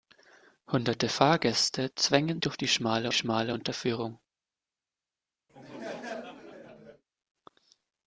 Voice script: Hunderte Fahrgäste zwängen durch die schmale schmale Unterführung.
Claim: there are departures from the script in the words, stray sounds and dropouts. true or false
true